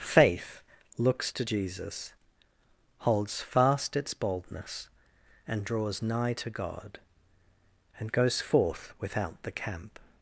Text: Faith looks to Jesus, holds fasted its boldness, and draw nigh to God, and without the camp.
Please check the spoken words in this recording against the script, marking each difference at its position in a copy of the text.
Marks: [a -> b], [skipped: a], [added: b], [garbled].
Faith looks to Jesus, holds [fasted -> fast] its boldness, and [draw -> draws] nigh to God, and [added: goes forth] without the camp.